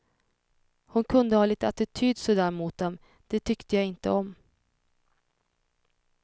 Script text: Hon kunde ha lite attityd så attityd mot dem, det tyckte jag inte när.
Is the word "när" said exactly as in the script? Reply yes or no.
no